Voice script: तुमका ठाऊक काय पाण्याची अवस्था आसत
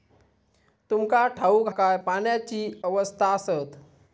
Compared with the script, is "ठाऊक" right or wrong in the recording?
right